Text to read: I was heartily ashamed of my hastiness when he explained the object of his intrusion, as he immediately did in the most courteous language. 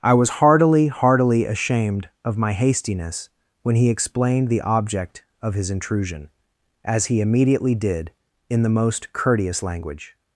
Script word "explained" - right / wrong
right